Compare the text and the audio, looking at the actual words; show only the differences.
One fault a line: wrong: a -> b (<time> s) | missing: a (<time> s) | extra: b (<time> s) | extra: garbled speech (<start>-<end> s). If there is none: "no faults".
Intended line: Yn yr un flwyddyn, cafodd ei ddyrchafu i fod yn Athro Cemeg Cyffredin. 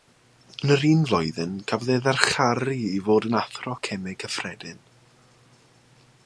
no faults